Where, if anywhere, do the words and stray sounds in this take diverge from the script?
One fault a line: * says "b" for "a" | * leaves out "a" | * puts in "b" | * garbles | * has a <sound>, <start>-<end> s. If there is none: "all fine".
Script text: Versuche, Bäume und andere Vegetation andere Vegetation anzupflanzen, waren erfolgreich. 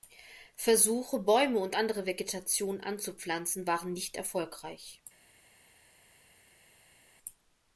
* leaves out "andere Vegetation"
* puts in "nicht"